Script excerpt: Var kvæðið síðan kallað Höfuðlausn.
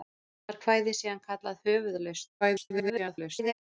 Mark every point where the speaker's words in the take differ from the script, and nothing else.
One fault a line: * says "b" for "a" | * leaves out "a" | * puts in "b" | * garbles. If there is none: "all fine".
* garbles